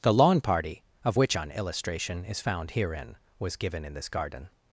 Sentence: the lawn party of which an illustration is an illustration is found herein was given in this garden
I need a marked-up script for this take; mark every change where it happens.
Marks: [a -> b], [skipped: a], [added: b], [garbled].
the lawn party of which an illustration is [skipped: an illustration is] found herein was given in this garden